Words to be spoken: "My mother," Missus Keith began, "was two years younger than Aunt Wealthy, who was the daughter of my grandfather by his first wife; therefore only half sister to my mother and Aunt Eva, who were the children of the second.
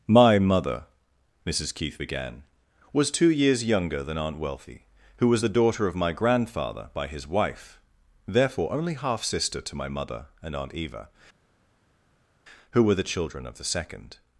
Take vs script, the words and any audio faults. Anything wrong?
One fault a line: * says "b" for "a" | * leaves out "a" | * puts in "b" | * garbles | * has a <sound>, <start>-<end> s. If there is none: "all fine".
* leaves out "first"